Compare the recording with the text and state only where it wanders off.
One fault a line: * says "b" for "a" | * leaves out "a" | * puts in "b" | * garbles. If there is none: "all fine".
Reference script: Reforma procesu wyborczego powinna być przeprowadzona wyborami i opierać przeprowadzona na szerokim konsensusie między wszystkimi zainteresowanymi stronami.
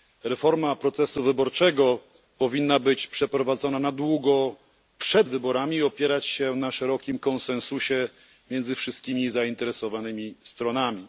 * puts in "na długo przed"
* says "się" for "przeprowadzona"